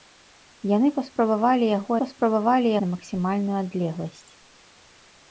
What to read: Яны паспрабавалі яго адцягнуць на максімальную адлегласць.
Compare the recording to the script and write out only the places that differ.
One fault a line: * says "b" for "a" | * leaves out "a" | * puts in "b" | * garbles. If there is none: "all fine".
* says "паспрабавалі" for "адцягнуць"